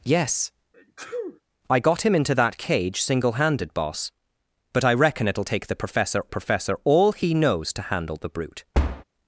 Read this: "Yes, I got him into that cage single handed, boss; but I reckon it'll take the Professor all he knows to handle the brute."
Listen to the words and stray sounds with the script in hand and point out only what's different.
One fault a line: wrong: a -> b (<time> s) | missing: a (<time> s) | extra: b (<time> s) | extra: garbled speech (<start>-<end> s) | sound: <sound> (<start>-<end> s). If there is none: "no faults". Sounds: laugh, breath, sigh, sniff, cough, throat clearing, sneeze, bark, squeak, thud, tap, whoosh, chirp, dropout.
sound: sneeze (0.7-1.4 s)
extra: Professor (6.3 s)
sound: thud (8.7-9.0 s)